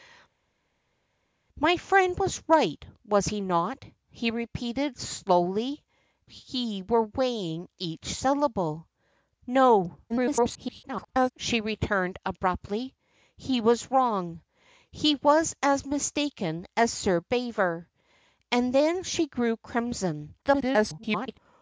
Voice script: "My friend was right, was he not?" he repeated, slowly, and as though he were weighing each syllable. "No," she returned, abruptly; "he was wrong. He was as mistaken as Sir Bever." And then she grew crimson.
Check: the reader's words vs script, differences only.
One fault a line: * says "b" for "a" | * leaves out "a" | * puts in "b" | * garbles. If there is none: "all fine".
* leaves out "and as though"
* garbles
* garbles